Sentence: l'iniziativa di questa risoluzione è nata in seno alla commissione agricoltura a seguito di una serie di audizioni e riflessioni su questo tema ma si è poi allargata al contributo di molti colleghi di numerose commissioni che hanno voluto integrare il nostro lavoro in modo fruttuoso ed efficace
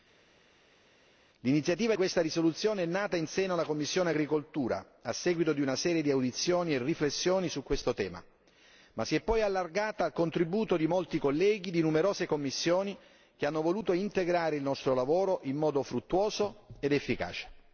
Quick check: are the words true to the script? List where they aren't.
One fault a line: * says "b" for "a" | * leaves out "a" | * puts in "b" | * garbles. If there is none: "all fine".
* leaves out "di"